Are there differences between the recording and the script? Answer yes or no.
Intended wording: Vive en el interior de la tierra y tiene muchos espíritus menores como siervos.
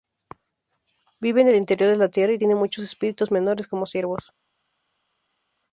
no